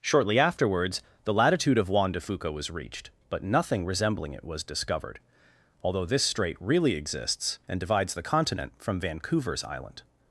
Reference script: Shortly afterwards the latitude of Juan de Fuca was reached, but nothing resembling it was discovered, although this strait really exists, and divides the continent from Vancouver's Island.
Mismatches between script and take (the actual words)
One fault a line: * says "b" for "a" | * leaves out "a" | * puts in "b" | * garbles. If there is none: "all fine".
all fine